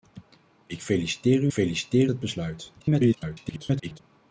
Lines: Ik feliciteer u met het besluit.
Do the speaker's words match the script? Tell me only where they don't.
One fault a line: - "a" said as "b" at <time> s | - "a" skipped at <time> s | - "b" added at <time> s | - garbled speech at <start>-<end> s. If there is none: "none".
- "met" said as "feliciteer" at 1.5 s
- garbled speech at 2.8-4.0 s